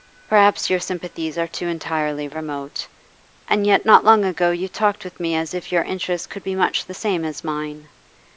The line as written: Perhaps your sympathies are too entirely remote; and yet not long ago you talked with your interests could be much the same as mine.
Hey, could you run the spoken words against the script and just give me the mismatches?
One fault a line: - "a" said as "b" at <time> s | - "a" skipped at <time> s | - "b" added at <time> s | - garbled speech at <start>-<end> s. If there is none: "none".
- "me as if" added at 5.2 s